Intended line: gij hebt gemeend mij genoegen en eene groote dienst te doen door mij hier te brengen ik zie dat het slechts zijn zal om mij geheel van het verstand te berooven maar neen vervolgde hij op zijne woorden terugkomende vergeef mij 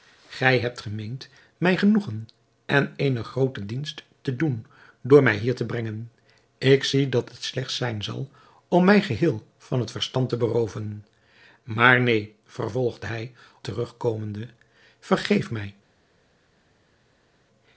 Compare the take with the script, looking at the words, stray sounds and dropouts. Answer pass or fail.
fail